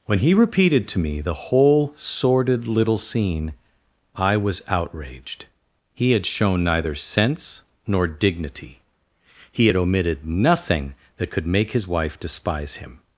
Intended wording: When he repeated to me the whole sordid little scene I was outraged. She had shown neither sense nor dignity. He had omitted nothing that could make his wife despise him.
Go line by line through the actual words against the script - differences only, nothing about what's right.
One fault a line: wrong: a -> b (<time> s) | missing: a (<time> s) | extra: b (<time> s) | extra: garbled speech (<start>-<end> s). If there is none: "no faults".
wrong: She -> He (5.9 s)